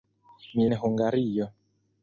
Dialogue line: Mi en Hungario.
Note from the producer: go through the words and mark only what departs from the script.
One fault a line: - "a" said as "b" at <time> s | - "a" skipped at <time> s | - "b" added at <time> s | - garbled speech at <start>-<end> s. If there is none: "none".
none